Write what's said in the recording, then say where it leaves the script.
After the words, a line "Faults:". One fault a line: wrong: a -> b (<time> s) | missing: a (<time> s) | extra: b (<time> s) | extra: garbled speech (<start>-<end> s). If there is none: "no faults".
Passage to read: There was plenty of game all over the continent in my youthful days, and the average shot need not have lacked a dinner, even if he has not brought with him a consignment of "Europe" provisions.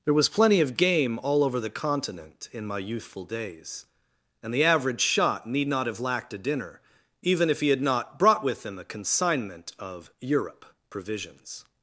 There was plenty of game all over the continent in my youthful days, and the average shot need not have lacked a dinner, even if he had not brought with him a consignment of "Europe" provisions.
Faults:
wrong: has -> had (7.7 s)